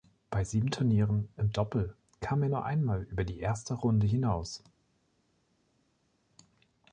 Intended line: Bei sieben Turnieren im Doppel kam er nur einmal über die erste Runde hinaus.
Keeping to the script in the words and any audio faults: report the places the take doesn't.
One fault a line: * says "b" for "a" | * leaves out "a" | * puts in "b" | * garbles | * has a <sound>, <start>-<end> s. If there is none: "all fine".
all fine